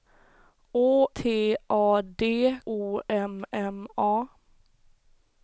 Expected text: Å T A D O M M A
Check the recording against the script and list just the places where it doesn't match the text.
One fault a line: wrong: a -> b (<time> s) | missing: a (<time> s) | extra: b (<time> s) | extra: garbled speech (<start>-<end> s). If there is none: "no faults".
no faults